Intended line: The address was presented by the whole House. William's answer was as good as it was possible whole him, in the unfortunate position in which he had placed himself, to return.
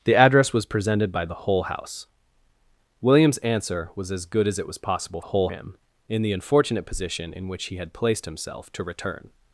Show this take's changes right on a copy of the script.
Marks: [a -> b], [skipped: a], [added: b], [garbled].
The address was presented by the whole House. William's answer was as good as it was possible whole him, in the unfortunate position in which he had placed himself, to return.